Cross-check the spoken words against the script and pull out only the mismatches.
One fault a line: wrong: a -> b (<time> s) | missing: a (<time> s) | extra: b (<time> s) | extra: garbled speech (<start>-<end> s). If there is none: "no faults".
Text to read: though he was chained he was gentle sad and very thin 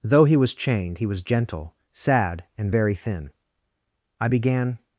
extra: i began (4.2 s)